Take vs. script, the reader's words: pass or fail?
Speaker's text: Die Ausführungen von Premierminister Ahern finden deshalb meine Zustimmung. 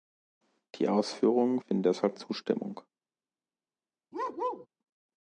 fail